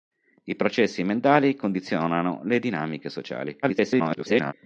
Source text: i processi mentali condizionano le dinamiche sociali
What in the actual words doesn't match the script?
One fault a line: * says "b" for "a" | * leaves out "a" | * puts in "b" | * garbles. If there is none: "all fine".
* garbles